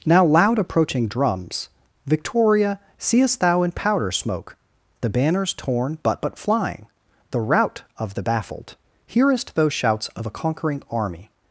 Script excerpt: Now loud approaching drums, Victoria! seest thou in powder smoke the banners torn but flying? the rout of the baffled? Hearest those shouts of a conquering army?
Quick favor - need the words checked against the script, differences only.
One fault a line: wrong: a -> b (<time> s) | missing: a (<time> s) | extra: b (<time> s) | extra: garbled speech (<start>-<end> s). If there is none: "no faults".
extra: but (6.2 s)